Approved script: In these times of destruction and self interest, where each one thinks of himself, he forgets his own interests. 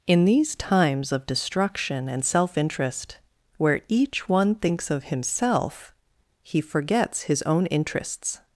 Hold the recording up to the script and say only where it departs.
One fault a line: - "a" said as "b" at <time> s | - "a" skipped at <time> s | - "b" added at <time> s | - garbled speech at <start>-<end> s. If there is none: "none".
none